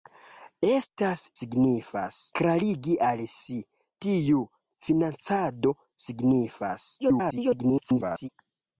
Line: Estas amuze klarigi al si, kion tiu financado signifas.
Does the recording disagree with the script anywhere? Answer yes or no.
yes